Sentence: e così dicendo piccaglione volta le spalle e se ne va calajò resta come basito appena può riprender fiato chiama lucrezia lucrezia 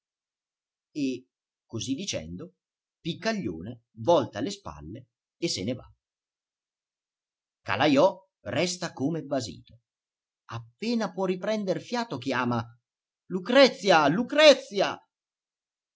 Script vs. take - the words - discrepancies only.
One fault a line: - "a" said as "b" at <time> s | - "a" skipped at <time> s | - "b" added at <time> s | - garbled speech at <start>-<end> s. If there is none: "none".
none